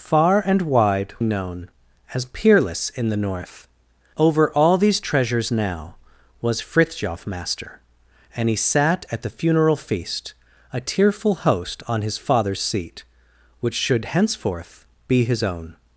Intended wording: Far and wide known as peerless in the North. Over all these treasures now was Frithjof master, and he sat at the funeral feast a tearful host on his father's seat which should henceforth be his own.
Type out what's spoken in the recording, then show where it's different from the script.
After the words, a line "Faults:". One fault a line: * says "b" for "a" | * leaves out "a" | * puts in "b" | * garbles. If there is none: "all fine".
Far and wide known as peerless in the North. Over all these treasures now was Frithjof master, and he sat at the funeral feast a tearful host on his father's seat which should henceforth be his own.
Faults:
all fine